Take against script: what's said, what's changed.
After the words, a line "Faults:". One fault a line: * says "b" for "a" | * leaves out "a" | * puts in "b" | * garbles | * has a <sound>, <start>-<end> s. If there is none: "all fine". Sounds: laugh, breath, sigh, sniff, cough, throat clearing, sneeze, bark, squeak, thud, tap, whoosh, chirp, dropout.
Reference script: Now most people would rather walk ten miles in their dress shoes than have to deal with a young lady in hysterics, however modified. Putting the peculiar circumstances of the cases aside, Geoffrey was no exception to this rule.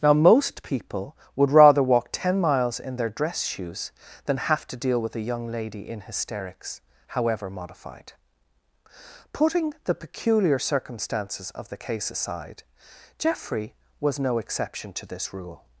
Now most people would rather walk ten miles in their dress shoes than have to deal with a young lady in hysterics, however modified. Putting the peculiar circumstances of the case aside, Geoffrey was no exception to this rule.
Faults:
* says "case" for "cases"